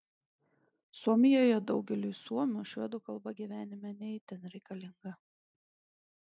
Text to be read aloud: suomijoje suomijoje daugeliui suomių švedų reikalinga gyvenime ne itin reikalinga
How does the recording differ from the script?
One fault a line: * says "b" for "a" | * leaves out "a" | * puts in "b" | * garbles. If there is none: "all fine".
* leaves out "suomijoje"
* says "kalba" for "reikalinga"